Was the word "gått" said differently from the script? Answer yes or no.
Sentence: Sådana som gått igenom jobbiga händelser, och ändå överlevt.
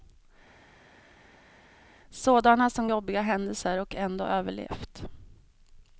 yes